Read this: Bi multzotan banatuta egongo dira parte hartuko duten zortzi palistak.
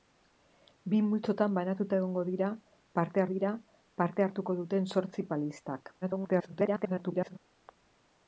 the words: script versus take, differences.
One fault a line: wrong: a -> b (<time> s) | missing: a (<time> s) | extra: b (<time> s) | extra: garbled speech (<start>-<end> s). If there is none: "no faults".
extra: dira parte (3.3 s)
extra: garbled speech (6.0-7.4 s)